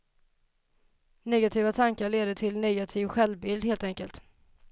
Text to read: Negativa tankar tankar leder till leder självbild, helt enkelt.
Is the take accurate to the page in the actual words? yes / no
no